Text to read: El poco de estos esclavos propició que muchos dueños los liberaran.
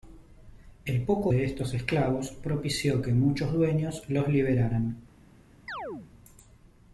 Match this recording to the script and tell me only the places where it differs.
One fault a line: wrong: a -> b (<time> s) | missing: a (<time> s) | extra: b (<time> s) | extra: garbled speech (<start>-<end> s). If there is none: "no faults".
no faults